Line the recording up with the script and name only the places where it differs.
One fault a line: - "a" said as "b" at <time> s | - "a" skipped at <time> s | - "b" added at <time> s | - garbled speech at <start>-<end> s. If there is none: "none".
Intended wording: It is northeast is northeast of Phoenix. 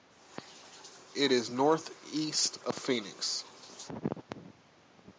- "is northeast" skipped at 2.6 s